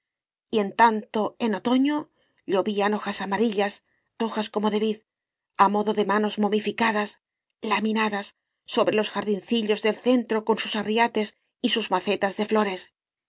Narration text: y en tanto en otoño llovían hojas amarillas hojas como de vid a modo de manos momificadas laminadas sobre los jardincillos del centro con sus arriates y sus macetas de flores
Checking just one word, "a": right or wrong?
right